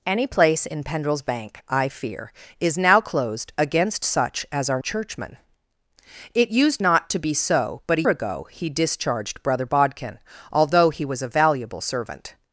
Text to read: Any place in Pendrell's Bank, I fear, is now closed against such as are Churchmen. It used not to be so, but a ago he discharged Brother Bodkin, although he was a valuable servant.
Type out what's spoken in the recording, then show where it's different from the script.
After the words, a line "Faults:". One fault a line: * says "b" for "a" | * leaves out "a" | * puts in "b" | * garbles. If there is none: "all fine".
Any place in Pendrell's Bank, I fear, is now closed against such as are Churchmen. It used not to be so, but a ago he discharged Brother Bodkin, although he was a valuable servant.
Faults:
all fine